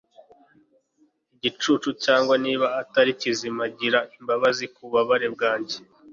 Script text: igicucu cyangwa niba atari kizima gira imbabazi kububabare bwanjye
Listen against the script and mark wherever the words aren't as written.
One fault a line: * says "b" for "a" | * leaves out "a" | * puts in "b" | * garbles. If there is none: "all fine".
all fine